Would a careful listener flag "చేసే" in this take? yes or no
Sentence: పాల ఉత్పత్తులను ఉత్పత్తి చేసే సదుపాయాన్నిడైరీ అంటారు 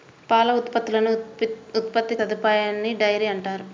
yes